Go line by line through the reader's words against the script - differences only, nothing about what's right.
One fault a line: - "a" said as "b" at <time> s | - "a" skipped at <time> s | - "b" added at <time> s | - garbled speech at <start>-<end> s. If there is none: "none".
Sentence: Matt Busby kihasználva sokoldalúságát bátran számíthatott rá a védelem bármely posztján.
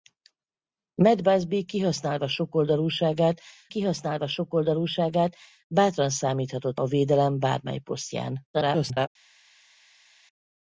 - "kihasználva sokoldalúságát" added at 3.7 s
- "rá" skipped at 6.8 s
- garbled speech at 8.5-9.1 s